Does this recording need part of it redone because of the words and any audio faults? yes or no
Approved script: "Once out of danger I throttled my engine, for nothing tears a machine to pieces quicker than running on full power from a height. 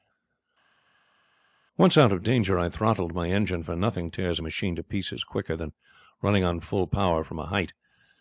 no